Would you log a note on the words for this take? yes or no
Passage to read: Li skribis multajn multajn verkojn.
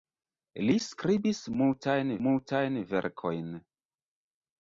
no